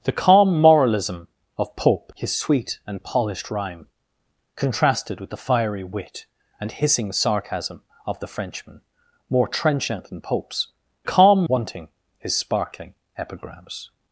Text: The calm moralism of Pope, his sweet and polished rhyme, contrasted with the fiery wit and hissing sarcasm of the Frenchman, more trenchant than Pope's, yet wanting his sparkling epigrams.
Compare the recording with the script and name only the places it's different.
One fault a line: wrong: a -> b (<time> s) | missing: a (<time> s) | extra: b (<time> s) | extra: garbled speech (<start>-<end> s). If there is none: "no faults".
wrong: yet -> calm (11.0 s)